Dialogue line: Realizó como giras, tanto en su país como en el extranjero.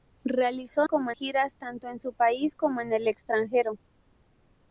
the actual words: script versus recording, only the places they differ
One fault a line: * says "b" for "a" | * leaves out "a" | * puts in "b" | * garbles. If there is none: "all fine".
all fine